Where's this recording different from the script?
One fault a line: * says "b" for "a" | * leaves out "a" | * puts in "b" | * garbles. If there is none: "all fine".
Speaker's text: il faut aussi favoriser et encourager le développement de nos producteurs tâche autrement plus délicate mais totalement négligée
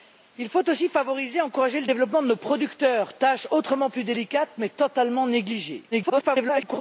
* garbles